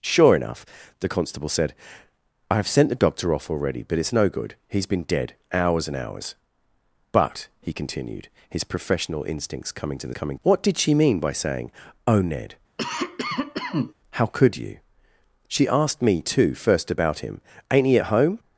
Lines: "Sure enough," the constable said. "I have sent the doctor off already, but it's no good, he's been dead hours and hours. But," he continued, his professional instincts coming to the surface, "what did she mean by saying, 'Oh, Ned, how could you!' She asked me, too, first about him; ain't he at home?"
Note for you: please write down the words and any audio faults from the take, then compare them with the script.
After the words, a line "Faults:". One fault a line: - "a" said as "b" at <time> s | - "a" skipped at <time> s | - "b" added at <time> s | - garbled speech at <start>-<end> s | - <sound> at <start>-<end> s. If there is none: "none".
"Sure enough," the constable said. "I have sent the doctor off already, but it's no good, he's been dead hours and hours. But," he continued, his professional instincts coming to the coming, "what did she mean by saying, 'Oh, Ned, how could you!' She asked me, too, first about him; ain't he at home?"
Faults:
- "surface" said as "coming" at 10.1 s
- cough at 12.8-13.9 s